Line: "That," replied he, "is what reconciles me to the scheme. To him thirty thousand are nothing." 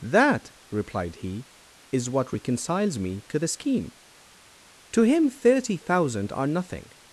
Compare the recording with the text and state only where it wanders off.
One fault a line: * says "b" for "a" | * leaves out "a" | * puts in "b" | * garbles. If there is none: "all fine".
all fine